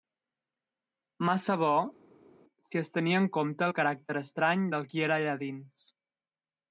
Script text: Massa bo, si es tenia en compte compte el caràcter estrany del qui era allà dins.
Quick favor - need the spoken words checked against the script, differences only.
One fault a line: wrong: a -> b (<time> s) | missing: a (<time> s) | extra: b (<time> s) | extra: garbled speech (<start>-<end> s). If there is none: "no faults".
missing: compte (3.7 s)